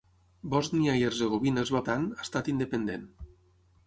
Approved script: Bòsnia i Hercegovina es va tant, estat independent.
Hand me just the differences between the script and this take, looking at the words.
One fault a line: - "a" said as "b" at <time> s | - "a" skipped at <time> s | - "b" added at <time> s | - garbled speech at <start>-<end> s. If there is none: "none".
none